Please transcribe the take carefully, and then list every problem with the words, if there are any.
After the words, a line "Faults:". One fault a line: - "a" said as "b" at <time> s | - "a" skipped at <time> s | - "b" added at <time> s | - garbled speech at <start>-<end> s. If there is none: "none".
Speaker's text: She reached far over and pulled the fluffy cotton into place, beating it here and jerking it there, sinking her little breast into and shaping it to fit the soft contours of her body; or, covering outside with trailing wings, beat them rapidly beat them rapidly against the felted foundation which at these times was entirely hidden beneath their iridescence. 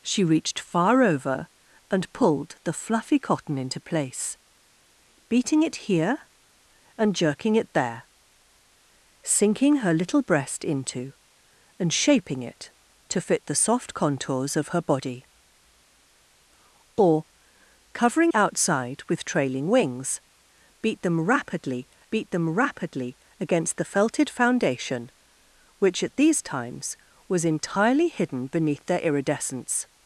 She reached far over and pulled the fluffy cotton into place, beating it here and jerking it there, sinking her little breast into and shaping it to fit the soft contours of her body; or, covering outside with trailing wings, beat them rapidly beat them rapidly against the felted foundation which at these times was entirely hidden beneath their iridescence.
Faults:
none